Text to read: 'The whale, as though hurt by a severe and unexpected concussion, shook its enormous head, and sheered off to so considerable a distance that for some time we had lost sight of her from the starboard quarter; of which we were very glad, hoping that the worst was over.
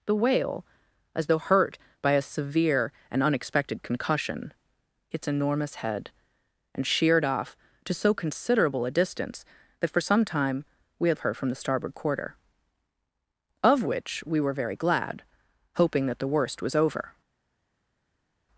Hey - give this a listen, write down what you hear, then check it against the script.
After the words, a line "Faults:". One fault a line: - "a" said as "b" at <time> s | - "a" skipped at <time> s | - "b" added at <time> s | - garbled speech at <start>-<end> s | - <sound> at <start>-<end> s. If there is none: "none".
'The whale, as though hurt by a severe and unexpected concussion, its enormous head, and sheered off to so considerable a distance that for some time we had of her from the starboard quarter; of which we were very glad, hoping that the worst was over.
Faults:
- "shook" skipped at 4.5 s
- "lost sight" skipped at 11.2 s